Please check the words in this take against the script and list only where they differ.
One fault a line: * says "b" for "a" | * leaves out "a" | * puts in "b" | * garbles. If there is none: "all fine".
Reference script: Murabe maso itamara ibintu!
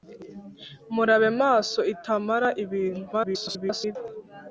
* garbles